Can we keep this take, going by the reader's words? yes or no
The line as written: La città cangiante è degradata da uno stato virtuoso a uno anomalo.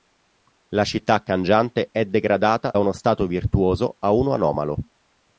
no